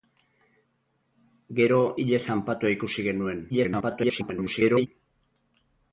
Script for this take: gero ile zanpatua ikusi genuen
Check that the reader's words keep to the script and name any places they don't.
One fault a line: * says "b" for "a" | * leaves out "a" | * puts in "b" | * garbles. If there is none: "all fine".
* garbles